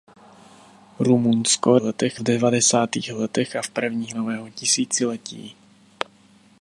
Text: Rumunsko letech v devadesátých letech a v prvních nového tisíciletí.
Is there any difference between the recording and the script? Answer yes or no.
no